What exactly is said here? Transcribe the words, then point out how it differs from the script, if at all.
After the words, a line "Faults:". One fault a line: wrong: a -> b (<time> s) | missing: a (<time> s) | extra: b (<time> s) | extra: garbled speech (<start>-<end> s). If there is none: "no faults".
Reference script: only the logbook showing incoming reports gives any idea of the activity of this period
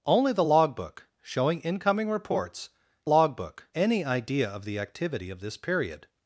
only the logbook showing incoming reports logbook any idea of the activity of this period
Faults:
wrong: gives -> logbook (3.0 s)